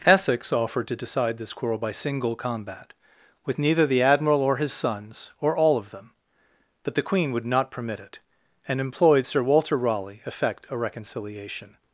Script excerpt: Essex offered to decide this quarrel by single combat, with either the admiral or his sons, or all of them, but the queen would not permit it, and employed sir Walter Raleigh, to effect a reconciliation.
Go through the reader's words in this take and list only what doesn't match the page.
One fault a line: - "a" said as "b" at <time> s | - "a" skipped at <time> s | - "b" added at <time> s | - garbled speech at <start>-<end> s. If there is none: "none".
- "either" said as "neither" at 3.6 s
- "to" skipped at 10.2 s